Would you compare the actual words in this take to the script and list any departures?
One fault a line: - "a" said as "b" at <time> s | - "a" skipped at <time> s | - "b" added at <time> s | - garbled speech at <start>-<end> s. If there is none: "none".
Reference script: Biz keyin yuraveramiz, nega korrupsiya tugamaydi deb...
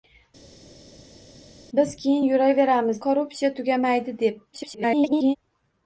- "nega" skipped at 3.0 s
- garbled speech at 4.5-5.4 s